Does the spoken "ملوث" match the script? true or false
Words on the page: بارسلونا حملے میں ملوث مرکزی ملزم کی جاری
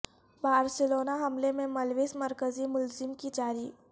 true